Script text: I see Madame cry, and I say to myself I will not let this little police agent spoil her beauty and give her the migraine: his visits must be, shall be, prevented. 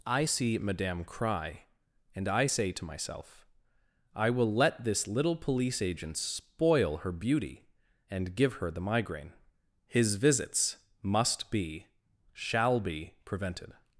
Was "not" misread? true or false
true